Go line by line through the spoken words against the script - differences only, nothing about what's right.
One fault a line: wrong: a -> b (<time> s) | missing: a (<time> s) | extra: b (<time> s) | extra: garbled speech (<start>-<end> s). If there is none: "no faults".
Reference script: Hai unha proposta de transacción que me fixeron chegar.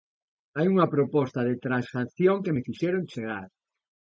no faults